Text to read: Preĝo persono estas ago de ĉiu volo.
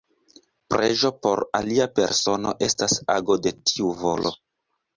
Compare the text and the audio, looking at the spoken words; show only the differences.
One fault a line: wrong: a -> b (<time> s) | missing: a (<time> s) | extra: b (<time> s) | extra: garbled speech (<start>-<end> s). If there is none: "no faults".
extra: por alia (1.2 s)
wrong: ĉiu -> tiu (3.7 s)